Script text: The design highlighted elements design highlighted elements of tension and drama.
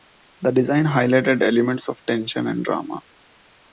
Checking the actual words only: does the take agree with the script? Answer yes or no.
no